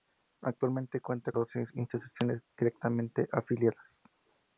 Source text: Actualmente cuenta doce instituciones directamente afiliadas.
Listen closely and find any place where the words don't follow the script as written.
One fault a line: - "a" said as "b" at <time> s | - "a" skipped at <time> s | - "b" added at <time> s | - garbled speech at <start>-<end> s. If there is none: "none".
none